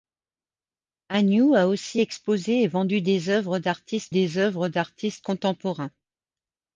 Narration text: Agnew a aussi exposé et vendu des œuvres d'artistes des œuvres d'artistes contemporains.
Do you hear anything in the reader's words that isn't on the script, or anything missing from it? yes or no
no